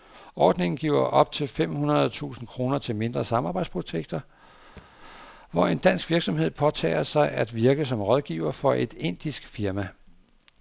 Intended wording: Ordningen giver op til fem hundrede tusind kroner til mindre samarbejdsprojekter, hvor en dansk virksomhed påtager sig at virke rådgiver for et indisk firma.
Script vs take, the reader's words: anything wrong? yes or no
yes